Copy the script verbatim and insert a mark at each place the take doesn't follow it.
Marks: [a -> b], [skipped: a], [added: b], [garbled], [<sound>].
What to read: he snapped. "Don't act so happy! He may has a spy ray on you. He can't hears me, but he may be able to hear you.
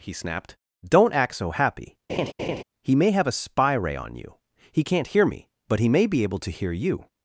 he snapped. "Don't act so happy! [laugh] He may [has -> have] a spy ray on you. He can't [hears -> hear] me, but he may be able to hear you.